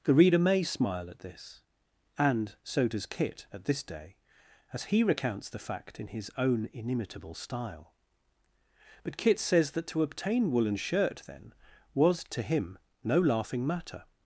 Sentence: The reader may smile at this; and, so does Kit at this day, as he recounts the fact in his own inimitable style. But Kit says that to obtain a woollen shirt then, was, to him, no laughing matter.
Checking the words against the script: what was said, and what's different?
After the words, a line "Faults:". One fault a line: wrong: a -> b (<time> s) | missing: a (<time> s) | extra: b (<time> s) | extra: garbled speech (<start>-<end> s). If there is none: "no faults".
The reader may smile at this; and, so does Kit at this day, as he recounts the fact in his own inimitable style. But Kit says that to obtain woollen shirt then, was, to him, no laughing matter.
Faults:
missing: a (10.5 s)